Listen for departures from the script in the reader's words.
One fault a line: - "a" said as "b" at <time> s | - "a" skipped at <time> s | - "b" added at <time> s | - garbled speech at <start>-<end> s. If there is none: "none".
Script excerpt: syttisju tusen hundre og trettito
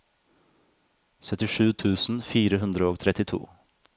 - "fire" added at 2.3 s